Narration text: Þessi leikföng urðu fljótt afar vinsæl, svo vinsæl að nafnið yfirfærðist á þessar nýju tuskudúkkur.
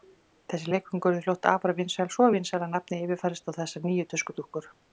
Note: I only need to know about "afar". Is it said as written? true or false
true